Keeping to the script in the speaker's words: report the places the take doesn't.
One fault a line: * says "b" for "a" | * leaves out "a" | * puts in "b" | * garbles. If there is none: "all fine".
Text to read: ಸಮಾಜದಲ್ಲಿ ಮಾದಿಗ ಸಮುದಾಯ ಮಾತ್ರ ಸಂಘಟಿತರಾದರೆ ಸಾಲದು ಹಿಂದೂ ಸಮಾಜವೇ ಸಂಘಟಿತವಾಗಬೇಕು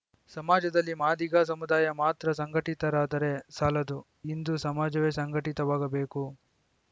all fine